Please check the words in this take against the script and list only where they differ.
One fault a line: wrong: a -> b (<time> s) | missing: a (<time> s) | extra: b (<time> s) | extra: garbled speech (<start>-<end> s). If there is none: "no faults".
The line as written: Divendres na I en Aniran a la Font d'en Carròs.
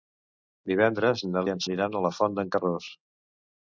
no faults